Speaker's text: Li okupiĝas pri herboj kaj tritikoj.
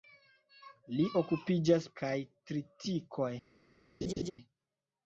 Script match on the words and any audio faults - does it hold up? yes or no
no